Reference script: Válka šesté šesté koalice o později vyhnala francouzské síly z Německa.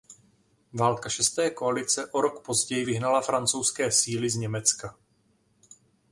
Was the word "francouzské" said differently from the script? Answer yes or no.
no